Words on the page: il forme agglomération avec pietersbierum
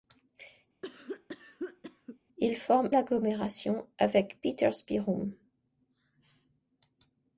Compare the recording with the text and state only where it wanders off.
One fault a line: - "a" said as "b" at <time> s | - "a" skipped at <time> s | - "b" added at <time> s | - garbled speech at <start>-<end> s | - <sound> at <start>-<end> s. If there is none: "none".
- cough at 0.8-2.2 s